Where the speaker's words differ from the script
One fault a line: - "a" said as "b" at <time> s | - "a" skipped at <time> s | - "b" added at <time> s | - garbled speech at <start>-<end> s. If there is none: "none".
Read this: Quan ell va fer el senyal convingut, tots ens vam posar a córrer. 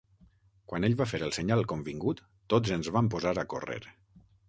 none